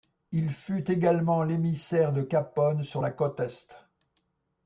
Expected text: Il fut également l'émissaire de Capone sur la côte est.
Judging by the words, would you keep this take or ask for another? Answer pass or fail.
pass